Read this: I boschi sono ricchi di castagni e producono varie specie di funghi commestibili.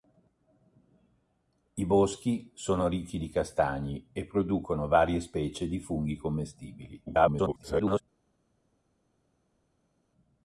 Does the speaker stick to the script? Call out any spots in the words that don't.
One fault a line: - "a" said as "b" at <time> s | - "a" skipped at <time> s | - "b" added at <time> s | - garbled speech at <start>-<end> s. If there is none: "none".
- garbled speech at 7.1-8.0 s